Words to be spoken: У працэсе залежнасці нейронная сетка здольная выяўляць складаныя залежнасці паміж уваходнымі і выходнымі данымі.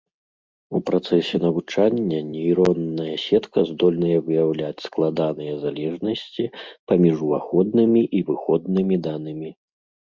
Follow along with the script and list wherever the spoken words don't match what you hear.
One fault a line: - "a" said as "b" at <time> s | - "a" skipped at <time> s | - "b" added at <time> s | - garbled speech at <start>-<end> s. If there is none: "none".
- "залежнасці" said as "навучання" at 1.4 s